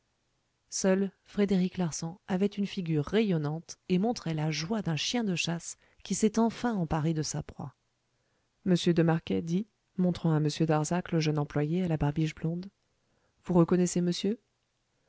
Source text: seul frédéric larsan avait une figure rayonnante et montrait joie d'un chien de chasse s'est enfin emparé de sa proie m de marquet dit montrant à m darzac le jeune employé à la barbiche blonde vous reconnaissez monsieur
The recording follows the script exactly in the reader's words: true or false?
false